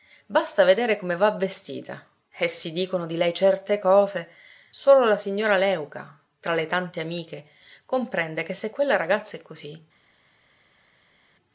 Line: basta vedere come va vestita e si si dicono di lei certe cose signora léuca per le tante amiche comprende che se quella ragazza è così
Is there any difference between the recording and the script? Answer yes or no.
yes